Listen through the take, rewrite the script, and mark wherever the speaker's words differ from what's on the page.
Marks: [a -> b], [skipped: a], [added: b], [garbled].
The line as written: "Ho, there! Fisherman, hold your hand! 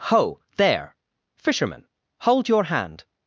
"Ho, there! Fisherman, hold your hand!